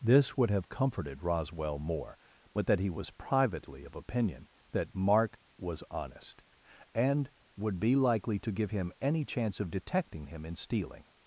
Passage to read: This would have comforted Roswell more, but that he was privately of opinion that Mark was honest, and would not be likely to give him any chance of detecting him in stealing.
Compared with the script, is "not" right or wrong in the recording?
wrong